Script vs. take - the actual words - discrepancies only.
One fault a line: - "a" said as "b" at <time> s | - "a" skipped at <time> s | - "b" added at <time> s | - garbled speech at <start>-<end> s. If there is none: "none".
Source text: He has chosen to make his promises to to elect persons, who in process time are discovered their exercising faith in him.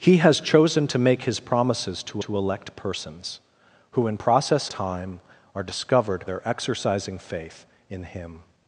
none